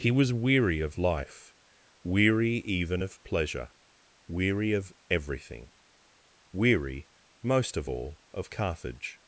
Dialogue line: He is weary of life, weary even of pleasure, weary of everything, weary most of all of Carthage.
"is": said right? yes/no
no